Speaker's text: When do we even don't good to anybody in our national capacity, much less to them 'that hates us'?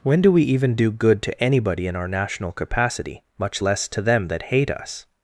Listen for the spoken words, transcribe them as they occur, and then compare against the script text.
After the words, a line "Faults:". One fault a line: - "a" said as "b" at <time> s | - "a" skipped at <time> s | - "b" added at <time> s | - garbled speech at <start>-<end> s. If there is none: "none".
When do we even do good to anybody in our national capacity, much less to them 'that hate us'?
Faults:
- "don't" said as "do" at 0.8 s
- "hates" said as "hate" at 4.4 s